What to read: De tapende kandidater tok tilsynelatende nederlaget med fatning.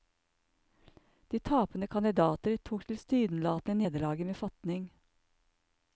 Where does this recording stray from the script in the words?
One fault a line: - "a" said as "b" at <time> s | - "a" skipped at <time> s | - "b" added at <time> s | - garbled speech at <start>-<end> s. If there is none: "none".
none